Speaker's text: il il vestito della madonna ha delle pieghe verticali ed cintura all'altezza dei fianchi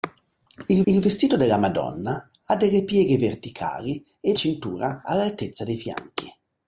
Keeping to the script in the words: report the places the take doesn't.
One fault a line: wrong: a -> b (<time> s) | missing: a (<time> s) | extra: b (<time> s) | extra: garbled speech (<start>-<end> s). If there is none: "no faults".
no faults